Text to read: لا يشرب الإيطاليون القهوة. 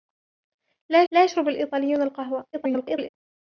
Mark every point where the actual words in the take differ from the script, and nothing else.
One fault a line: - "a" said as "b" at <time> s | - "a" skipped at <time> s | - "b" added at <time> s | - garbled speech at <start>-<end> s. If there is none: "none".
- "لا" added at 1.1 s
- garbled speech at 2.5-3.1 s